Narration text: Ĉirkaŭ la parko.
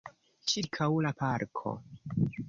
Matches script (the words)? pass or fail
pass